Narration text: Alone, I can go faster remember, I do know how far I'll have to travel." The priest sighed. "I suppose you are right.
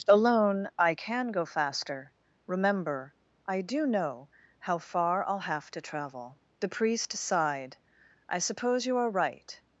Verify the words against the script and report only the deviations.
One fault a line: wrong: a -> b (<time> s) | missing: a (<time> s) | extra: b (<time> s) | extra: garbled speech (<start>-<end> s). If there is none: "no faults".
no faults